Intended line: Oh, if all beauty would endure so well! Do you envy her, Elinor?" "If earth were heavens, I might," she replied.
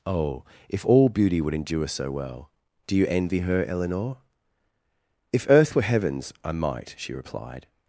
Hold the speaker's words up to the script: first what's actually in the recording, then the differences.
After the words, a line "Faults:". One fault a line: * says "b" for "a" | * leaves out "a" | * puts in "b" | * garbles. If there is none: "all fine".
Oh, if all beauty would endure so well! Do you envy her, Elinor?" "If earth were heavens, I might," she replied.
Faults:
all fine